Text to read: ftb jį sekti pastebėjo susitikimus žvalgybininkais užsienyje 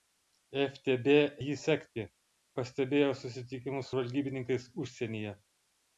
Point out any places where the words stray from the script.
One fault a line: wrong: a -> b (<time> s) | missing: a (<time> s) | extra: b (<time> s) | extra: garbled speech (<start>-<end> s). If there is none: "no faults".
no faults